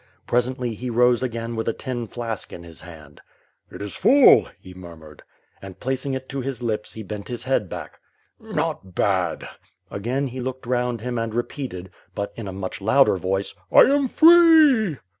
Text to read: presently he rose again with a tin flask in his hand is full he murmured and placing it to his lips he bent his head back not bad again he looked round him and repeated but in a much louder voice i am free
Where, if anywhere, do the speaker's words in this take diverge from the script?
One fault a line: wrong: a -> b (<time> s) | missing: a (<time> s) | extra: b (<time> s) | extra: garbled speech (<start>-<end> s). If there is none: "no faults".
extra: it (3.7 s)